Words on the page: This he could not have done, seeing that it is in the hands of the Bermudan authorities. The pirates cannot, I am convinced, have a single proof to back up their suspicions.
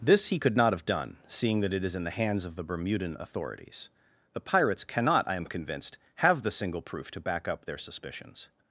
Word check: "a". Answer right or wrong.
wrong